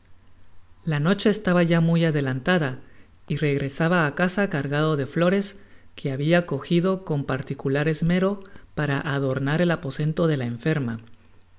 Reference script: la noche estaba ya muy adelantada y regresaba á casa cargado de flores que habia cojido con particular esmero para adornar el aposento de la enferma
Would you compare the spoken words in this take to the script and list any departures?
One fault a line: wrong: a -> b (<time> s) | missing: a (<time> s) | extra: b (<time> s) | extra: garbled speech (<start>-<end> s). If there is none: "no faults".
no faults